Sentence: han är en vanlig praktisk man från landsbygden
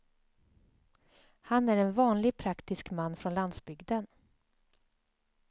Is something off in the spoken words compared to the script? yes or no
no